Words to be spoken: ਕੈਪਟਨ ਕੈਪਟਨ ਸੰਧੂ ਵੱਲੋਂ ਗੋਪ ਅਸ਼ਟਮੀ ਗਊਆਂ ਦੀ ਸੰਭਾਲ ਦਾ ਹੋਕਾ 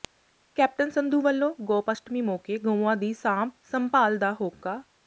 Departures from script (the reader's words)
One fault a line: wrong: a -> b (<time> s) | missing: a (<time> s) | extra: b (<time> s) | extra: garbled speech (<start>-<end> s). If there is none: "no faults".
missing: ਕੈਪਟਨ (0.9 s)
extra: ਮੌਕੇ (2.2 s)
extra: ਸਾਂਭ (3.1 s)